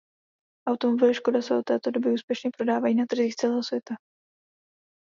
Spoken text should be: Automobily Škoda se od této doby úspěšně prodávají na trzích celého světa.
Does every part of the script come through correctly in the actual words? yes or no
yes